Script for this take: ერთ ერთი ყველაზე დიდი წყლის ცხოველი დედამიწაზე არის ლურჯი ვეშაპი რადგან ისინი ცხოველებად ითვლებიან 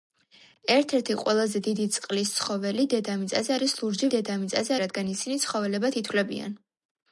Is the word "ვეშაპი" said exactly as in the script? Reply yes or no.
no